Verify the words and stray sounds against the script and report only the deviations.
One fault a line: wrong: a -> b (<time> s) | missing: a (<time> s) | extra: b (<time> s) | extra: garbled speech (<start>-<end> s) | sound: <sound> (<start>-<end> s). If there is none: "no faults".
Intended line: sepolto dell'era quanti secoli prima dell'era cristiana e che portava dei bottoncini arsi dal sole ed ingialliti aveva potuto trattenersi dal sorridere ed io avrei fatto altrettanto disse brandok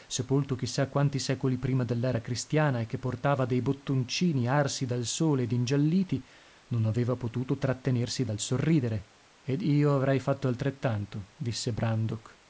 wrong: dell'era -> chissà (0.6 s)
extra: non (6.7 s)